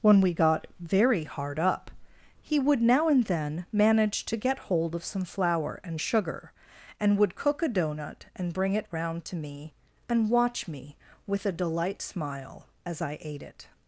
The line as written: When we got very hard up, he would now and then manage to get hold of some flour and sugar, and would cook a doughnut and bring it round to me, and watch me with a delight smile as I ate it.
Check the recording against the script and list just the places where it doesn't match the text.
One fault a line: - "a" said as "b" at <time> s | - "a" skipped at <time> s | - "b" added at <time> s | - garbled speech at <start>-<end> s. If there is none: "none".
none